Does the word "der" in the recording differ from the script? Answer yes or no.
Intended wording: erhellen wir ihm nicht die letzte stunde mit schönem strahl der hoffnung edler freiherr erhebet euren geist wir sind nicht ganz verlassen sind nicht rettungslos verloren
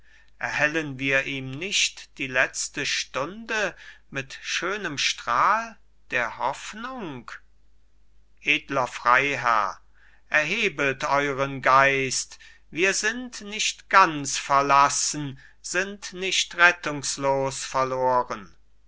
no